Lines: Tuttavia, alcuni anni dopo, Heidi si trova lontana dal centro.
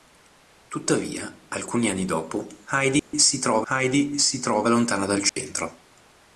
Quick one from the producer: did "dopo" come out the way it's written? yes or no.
yes